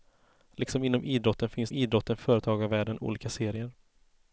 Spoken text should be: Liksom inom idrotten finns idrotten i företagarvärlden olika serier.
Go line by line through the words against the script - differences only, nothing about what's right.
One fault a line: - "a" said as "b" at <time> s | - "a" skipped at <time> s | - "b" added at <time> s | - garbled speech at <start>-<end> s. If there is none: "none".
none